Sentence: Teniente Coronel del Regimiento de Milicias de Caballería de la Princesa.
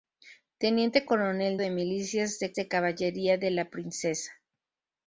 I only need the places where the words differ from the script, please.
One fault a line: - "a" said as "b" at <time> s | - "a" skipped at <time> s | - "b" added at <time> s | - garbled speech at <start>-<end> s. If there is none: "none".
- "del Regimiento" said as "de Milicias" at 1.6 s
- "Milicias" skipped at 2.5 s